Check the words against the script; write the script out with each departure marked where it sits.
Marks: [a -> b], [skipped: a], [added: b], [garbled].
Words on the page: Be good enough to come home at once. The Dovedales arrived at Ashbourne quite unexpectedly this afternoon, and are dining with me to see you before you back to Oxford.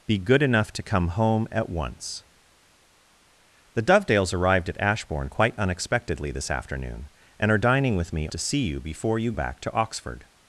Be good enough to come home at once. The Dovedales arrived at Ashbourne quite unexpectedly this afternoon, and are dining with me to see you before you back to Oxford.